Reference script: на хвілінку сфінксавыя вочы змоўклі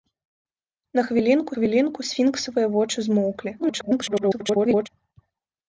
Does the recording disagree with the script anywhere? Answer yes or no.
yes